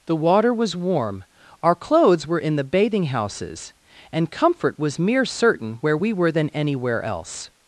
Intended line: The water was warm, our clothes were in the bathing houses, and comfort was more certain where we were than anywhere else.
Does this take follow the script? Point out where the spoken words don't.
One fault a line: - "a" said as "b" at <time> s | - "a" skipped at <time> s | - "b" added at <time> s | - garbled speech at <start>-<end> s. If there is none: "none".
- "more" said as "mere" at 5.0 s